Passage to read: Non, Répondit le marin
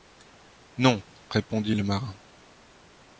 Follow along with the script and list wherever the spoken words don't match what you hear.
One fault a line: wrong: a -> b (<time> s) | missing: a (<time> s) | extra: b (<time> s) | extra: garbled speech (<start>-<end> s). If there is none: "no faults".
no faults